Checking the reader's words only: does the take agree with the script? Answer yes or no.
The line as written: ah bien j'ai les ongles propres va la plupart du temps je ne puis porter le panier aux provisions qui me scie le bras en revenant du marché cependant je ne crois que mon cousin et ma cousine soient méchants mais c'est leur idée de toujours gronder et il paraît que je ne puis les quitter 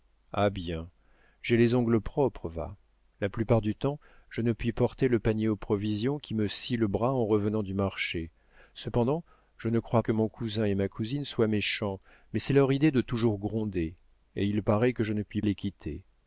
yes